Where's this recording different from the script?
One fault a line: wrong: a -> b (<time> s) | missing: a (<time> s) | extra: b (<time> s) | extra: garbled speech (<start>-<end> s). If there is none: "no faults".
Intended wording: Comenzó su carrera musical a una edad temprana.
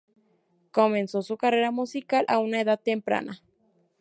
no faults